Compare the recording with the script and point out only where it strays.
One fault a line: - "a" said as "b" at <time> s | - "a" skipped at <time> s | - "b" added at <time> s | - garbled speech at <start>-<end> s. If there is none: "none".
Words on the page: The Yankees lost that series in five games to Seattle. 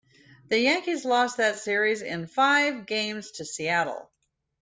none